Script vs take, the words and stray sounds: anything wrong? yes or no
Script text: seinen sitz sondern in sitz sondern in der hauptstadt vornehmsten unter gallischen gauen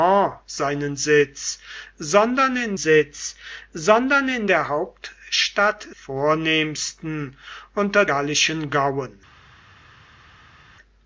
no